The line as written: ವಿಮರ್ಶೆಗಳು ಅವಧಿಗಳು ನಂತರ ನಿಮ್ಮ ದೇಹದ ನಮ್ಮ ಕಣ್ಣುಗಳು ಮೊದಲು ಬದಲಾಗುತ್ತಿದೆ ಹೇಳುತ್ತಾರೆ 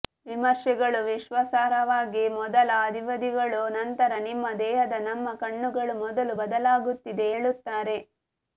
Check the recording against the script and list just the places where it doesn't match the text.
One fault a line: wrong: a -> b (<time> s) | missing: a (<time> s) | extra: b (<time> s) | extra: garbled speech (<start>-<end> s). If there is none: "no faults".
extra: ವಿಶ್ವಾಸಾರ್ಹವಾಗಿ ಮೊದಲ (1.1 s)